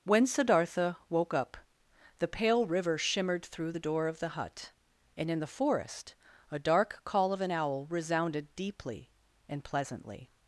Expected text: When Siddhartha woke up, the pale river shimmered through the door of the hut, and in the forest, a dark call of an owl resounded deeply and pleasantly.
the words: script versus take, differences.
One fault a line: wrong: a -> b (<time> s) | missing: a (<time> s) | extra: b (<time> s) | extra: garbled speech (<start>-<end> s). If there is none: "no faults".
no faults